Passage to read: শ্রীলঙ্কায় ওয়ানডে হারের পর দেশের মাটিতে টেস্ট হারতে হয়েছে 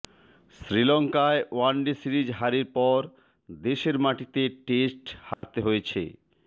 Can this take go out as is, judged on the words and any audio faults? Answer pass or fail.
fail